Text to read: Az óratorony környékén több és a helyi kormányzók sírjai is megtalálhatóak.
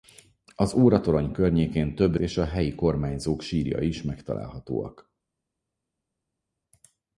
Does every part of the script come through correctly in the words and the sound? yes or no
yes